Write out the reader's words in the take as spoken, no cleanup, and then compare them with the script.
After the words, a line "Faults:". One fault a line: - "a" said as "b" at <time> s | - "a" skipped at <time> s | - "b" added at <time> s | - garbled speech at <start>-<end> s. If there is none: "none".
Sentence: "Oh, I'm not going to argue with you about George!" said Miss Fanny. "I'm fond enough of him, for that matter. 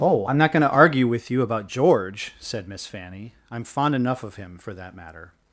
"Oh, I'm not going to argue with you about George!" said Miss Fanny. "I'm fond enough of him, for that matter.
Faults:
none